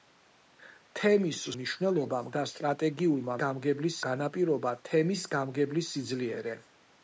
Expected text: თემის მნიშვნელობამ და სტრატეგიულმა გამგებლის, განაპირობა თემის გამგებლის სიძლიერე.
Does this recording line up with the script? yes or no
yes